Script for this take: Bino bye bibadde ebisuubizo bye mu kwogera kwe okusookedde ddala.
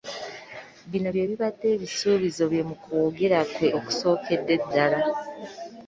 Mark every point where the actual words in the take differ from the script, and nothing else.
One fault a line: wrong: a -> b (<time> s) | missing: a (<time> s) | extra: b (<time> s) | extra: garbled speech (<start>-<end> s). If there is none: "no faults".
no faults